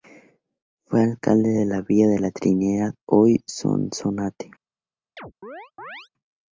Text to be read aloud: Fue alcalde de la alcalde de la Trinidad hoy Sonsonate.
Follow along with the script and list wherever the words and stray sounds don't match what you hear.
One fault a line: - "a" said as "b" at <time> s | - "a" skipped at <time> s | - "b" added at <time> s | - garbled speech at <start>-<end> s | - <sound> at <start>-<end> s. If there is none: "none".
- "alcalde" said as "villa" at 1.8 s
- chirp at 5.2-6.1 s